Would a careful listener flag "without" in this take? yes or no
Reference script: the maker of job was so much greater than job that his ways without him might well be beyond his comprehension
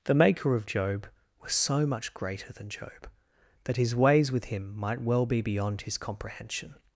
yes